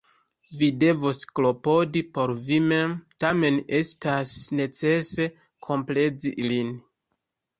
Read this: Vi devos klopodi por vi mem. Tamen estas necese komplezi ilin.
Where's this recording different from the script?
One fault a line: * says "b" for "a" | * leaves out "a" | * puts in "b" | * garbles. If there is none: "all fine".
all fine